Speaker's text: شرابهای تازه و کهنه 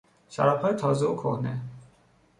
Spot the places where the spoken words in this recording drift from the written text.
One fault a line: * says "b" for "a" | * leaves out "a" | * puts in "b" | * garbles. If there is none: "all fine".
all fine